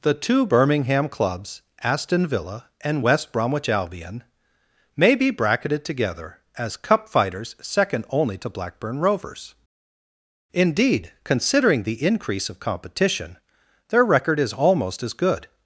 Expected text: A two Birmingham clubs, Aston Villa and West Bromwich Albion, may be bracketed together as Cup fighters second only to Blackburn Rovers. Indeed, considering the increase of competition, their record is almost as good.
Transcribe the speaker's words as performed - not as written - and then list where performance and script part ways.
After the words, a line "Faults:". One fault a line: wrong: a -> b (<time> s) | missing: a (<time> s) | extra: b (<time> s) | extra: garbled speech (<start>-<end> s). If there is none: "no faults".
The two Birmingham clubs, Aston Villa and West Bromwich Albion, may be bracketed together as Cup fighters second only to Blackburn Rovers. Indeed, considering the increase of competition, their record is almost as good.
Faults:
wrong: A -> The (0.0 s)